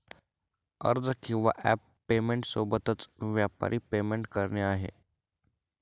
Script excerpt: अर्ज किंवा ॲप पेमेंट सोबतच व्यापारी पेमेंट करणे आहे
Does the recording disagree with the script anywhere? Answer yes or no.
no